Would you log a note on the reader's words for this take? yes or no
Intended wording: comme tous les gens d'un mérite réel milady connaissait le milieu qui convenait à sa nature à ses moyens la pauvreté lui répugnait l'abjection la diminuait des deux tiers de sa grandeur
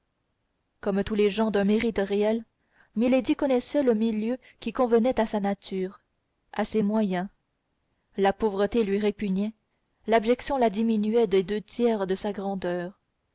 no